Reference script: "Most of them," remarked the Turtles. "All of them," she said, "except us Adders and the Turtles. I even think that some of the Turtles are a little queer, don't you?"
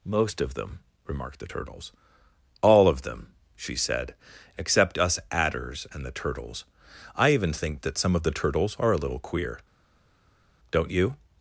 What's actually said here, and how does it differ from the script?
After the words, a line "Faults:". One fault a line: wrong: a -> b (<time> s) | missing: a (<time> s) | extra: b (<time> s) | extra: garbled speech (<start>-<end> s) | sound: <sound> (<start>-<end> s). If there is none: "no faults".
"Most of them," remarked the Turtles. "All of them," she said, "except us Adders and the Turtles. I even think that some of the Turtles are a little queer, don't you?"
Faults:
no faults